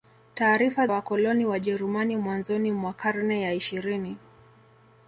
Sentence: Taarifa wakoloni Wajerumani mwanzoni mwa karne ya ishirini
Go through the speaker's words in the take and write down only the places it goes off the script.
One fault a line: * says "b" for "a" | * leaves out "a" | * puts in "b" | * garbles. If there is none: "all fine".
all fine